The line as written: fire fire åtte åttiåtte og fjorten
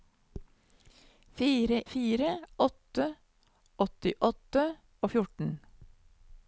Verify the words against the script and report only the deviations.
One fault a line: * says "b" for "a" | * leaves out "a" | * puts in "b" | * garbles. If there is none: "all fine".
all fine